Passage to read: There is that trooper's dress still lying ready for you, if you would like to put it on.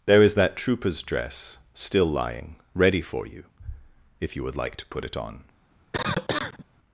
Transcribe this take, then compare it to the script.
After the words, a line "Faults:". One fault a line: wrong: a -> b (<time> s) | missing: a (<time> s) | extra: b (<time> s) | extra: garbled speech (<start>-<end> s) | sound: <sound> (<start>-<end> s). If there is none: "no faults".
There is that trooper's dress still lying ready for you, if you would like to put it on.
Faults:
sound: cough (5.9-6.6 s)